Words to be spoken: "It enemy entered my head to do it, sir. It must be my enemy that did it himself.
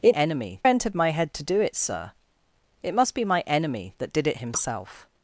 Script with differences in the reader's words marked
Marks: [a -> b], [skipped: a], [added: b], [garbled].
"It enemy entered my head to do it, sir. It must be my enemy that did it himself.